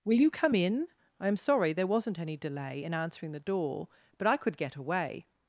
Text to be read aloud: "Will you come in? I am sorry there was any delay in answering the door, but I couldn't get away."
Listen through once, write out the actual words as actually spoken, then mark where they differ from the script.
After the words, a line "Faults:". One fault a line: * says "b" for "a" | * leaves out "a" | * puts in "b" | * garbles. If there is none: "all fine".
"Will you come in? I am sorry there wasn't any delay in answering the door, but I could get away."
Faults:
* says "wasn't" for "was"
* says "could" for "couldn't"